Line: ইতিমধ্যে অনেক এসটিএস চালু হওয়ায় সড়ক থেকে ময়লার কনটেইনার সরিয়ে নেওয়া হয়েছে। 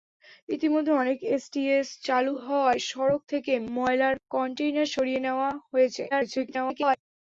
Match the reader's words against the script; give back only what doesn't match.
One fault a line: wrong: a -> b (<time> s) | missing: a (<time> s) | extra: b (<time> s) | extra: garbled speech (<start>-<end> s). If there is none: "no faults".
extra: garbled speech (6.1-7.0 s)